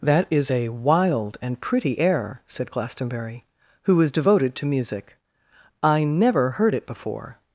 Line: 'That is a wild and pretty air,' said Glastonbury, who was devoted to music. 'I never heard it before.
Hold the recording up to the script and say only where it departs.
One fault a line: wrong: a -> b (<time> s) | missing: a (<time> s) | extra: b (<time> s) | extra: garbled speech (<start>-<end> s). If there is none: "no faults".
no faults